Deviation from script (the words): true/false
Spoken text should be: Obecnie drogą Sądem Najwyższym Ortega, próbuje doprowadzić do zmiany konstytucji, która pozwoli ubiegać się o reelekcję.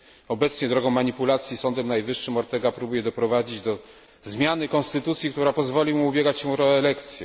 true